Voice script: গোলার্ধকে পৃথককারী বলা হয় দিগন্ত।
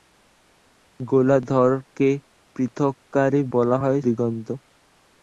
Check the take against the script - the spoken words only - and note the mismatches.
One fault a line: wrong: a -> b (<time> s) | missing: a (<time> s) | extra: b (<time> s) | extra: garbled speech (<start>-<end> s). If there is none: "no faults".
no faults